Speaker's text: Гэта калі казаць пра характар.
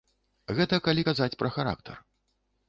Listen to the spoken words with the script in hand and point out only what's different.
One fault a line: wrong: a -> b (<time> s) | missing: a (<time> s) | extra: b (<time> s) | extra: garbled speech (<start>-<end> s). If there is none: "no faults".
no faults